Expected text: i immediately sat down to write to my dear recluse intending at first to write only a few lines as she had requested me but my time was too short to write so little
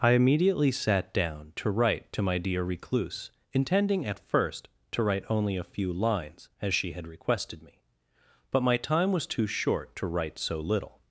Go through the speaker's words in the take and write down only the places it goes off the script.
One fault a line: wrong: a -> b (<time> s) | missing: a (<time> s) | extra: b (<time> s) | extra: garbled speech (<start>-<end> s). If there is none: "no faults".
no faults